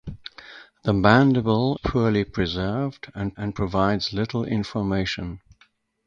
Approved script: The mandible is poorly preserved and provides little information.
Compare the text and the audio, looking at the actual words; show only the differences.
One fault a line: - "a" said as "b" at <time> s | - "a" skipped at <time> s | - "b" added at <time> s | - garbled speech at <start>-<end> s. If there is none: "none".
- "is" skipped at 1.8 s
- "and" added at 3.4 s